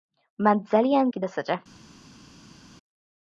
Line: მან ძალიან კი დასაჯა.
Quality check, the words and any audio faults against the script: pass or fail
pass